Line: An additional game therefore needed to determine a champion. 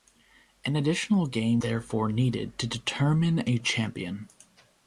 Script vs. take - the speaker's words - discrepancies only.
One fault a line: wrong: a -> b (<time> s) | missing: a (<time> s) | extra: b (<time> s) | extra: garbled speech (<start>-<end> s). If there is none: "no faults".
no faults